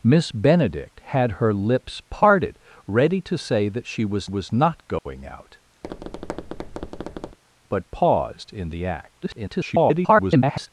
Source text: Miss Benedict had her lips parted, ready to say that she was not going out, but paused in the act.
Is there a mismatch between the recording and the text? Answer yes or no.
yes